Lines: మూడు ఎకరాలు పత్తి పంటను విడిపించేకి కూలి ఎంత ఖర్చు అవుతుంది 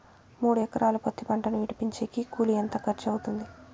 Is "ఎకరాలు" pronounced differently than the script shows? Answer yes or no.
no